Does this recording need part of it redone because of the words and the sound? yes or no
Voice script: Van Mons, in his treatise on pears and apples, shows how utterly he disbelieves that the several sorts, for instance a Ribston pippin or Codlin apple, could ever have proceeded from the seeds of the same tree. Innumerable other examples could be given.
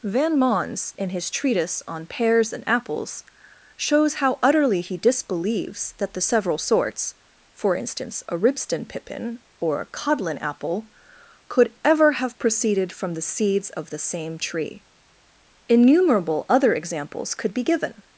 yes